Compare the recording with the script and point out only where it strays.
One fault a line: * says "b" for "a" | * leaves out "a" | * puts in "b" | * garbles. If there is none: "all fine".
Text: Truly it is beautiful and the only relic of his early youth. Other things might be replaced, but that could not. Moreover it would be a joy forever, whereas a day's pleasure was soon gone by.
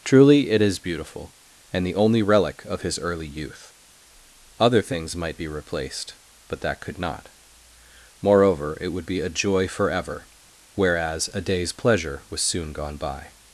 all fine